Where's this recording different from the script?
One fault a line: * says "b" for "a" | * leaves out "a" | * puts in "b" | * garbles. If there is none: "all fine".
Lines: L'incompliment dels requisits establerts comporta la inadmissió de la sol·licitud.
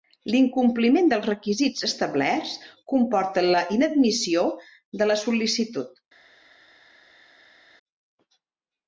all fine